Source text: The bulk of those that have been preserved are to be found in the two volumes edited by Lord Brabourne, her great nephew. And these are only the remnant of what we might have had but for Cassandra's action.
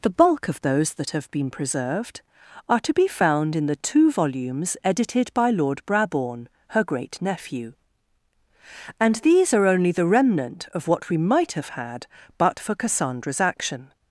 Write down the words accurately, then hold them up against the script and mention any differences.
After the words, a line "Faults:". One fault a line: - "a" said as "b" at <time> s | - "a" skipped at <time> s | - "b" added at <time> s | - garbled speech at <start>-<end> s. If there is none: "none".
The bulk of those that have been preserved are to be found in the two volumes edited by Lord Brabourne, her great nephew. And these are only the remnant of what we might have had but for Cassandra's action.
Faults:
none